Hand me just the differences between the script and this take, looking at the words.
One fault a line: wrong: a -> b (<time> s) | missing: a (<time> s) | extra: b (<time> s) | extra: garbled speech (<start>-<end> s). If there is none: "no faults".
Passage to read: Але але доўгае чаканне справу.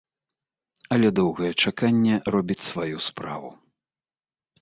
missing: але (1.1 s)
extra: робіць сваю (2.3 s)